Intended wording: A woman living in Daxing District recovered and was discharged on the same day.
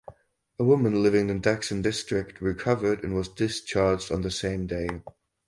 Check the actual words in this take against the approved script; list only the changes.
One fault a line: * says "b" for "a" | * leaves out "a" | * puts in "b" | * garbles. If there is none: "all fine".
all fine